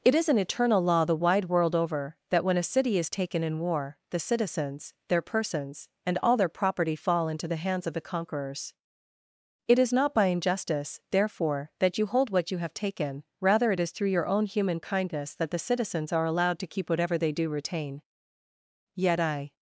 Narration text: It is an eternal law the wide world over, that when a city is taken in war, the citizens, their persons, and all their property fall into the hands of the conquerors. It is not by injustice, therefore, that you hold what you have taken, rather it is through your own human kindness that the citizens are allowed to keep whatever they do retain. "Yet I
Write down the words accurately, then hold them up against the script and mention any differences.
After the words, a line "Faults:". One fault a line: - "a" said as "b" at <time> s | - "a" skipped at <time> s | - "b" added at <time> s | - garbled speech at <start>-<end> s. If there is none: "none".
It is an eternal law the wide world over, that when a city is taken in war, the citizens, their persons, and all their property fall into the hands of the conquerors. It is not by injustice, therefore, that you hold what you have taken, rather it is through your own human kindness that the citizens are allowed to keep whatever they do retain. "Yet I
Faults:
none